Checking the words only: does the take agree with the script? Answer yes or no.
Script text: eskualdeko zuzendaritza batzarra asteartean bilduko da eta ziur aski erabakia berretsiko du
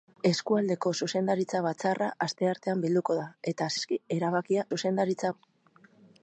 no